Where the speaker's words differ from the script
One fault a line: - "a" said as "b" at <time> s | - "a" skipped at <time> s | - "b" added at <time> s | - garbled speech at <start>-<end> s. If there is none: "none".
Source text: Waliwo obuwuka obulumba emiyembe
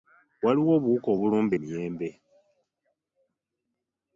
none